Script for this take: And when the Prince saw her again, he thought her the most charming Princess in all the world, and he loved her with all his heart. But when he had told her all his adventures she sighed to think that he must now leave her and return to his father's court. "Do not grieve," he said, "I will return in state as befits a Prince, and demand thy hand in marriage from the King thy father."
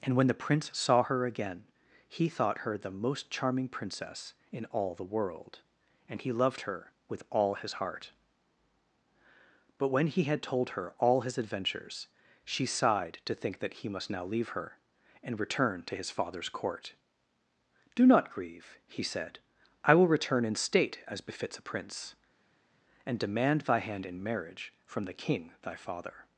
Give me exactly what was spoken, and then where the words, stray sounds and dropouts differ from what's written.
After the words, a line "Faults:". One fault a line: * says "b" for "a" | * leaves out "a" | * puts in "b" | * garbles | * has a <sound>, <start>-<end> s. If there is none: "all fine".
And when the Prince saw her again, he thought her the most charming Princess in all the world, and he loved her with all his heart. But when he had told her all his adventures she sighed to think that he must now leave her and return to his father's court. "Do not grieve," he said, "I will return in state as befits a Prince, and demand thy hand in marriage from the King thy father."
Faults:
all fine